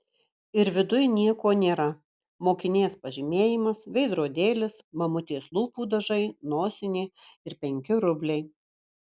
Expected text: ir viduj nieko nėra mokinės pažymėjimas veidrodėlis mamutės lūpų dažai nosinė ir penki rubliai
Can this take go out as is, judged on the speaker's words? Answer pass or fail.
pass